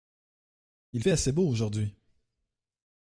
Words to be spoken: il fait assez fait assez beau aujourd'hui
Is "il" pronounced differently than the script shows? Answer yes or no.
no